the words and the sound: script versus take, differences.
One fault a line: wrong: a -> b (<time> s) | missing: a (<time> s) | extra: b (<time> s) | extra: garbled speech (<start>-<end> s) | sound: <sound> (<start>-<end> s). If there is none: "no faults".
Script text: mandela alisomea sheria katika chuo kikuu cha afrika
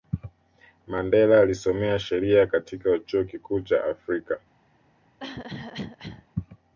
sound: cough (5.2-6.3 s)